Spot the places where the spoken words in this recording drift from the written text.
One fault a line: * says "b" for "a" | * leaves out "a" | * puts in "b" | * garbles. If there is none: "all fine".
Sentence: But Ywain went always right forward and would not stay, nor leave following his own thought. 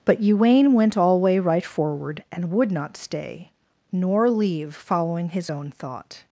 * says "alway" for "always"